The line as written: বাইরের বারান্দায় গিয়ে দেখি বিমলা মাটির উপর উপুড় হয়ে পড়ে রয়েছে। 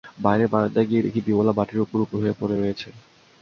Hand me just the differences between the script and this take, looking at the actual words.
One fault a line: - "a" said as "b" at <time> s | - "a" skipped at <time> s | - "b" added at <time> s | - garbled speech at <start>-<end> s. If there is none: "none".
none